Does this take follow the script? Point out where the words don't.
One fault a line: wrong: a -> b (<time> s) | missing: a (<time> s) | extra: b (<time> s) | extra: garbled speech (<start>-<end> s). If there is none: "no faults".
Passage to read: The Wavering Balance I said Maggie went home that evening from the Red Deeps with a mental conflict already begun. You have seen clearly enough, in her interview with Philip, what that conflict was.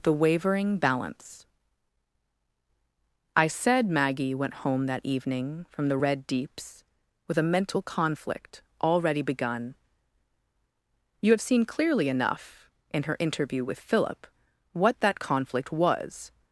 no faults